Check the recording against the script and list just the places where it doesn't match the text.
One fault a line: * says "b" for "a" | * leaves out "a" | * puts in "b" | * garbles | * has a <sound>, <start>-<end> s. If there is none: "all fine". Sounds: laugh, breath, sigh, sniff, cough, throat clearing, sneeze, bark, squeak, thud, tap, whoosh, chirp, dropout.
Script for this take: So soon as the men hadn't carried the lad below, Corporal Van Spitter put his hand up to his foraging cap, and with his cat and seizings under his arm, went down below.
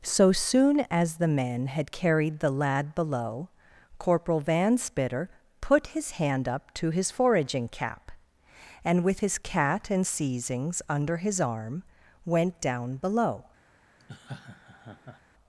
* says "had" for "hadn't"
* has a laugh, 14.0-15.2 s